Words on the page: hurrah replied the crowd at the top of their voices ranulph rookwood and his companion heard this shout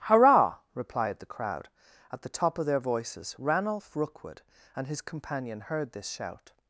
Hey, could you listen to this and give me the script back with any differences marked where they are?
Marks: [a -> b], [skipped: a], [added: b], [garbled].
hurrah replied the crowd at the top of their voices ranulph rookwood and his companion heard this shout